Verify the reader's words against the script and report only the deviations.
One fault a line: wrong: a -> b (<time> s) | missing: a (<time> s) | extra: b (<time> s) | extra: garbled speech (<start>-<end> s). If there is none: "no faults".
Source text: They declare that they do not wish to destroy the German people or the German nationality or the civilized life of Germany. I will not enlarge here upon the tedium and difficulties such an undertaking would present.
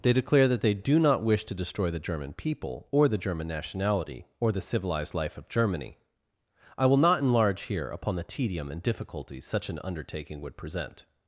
no faults